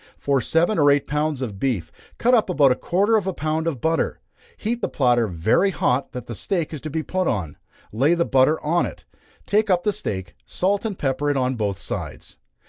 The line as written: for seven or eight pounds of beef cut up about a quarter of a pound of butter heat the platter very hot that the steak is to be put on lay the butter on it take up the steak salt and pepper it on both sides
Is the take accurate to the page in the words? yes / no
yes